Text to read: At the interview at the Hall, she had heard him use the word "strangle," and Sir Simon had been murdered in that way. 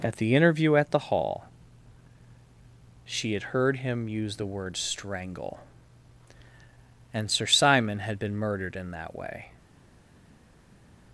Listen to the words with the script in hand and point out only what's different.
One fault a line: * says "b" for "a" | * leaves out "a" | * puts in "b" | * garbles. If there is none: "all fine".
all fine